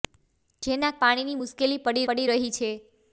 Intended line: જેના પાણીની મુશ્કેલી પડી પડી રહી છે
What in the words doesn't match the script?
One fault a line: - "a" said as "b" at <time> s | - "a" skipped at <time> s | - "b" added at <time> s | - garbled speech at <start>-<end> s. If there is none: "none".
none